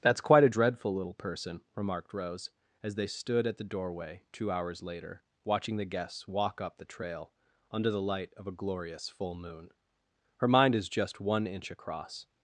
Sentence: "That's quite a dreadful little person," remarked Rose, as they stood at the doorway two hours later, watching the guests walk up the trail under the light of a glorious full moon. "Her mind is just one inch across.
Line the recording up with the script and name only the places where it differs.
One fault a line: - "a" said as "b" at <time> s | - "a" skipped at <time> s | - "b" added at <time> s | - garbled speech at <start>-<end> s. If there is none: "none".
none